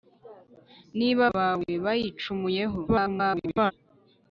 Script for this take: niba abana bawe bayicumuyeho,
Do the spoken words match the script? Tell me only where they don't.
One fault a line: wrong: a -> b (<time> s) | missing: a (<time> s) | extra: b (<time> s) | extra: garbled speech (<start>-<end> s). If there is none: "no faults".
missing: abana (1.2 s)
extra: garbled speech (2.9-3.7 s)